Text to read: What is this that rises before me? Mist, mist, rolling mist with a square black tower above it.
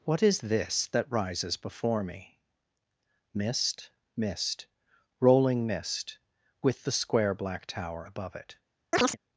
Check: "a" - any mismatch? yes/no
yes